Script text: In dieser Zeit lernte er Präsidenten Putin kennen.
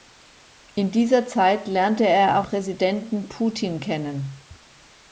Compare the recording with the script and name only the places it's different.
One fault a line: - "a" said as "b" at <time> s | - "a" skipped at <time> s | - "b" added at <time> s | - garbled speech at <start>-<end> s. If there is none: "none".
none